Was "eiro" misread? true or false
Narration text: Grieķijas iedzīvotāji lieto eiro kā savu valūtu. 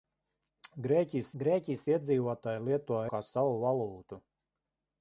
true